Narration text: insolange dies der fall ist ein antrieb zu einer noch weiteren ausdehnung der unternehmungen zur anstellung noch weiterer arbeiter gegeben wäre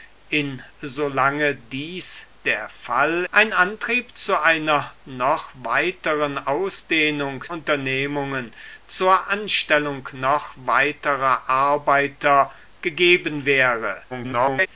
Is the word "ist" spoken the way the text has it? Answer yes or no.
no